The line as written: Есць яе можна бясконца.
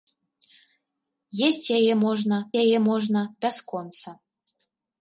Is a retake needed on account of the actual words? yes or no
yes